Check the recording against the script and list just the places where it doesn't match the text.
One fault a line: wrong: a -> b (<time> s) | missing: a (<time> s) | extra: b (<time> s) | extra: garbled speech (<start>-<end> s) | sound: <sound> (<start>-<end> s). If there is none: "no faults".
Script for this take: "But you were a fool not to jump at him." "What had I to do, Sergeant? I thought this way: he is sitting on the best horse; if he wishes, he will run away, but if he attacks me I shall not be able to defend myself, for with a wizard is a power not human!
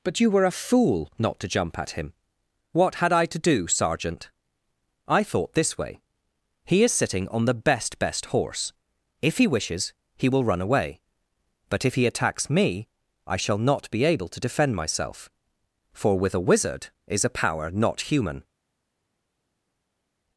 extra: best (8.0 s)